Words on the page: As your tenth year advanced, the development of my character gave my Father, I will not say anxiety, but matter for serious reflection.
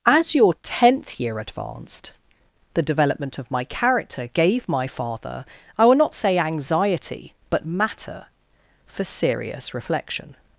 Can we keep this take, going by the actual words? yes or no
yes